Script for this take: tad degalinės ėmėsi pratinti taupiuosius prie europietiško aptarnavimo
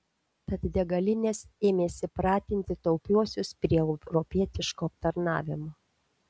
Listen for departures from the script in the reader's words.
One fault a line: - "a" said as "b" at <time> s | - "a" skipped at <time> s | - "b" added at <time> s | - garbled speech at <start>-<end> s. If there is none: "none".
none